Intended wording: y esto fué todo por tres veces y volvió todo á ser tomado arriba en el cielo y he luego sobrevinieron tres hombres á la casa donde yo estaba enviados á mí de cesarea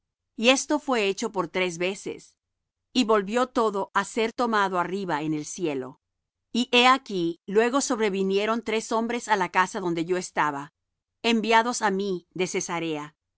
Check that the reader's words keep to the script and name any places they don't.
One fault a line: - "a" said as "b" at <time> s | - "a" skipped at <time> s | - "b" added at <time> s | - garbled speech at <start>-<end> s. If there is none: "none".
- "todo" said as "hecho" at 1.1 s
- "aquí" added at 6.9 s